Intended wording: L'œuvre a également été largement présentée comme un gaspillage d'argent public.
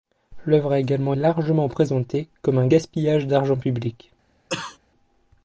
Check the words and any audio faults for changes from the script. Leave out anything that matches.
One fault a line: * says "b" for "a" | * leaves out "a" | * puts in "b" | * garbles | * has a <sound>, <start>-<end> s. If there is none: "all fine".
* leaves out "été"
* has a cough, 4.5-4.8 s